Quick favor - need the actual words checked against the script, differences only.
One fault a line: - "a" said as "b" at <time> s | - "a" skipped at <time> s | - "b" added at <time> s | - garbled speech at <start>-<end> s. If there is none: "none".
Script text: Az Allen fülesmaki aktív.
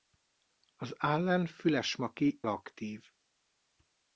none